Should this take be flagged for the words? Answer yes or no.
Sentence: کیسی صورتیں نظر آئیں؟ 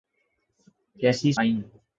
yes